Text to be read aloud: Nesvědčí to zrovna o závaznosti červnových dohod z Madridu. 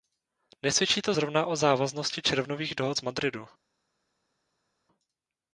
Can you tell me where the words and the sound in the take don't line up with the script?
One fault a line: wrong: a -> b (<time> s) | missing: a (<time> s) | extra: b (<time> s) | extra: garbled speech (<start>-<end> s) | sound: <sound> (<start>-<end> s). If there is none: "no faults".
no faults